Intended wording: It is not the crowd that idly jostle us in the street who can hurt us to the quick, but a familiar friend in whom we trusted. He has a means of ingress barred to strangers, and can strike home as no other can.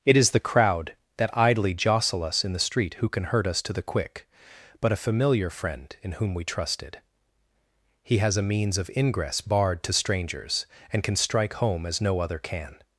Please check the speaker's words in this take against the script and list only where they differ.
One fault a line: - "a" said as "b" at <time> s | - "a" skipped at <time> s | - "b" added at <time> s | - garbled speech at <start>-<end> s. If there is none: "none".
- "not" skipped at 0.3 s